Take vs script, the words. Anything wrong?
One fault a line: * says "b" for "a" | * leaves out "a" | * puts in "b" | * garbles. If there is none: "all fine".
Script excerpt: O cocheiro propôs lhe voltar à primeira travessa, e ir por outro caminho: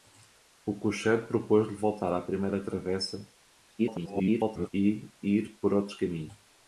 * garbles